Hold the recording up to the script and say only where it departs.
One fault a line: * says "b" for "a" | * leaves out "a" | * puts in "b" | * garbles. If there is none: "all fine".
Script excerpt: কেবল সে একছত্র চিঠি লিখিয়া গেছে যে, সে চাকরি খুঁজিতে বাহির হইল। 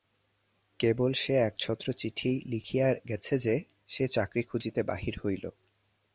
all fine